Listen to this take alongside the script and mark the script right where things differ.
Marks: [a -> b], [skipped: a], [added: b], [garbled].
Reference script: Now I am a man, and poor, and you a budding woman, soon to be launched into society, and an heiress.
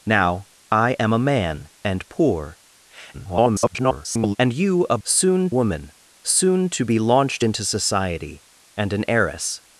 Now I am a man, and poor, [garbled] and you a [budding -> soon] woman, soon to be launched into society, and an heiress.